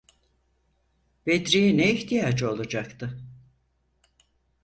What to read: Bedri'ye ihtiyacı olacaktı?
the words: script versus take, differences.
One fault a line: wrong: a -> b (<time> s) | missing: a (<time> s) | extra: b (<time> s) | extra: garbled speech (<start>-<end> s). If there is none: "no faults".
extra: ne (1.8 s)